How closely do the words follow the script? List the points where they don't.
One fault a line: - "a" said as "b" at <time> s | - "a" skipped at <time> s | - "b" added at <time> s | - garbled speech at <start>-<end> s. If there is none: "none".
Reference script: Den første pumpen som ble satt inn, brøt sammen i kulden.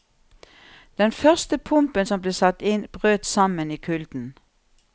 none